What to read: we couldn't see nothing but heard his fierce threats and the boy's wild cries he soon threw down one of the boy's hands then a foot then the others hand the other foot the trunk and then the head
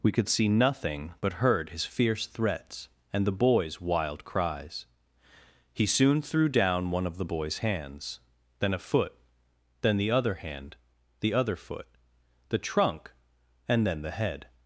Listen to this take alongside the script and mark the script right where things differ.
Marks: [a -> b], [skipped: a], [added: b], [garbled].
we [couldn't -> could] see nothing but heard his fierce threats and the boy's wild cries he soon threw down one of the boy's hands then a foot then the [others -> other] hand the other foot the trunk and then the head